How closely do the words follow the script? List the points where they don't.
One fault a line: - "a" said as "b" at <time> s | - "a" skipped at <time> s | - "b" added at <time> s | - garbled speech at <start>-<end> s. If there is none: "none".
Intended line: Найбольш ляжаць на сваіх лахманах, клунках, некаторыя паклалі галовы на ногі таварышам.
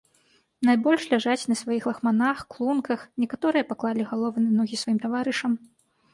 - "сваім" added at 4.8 s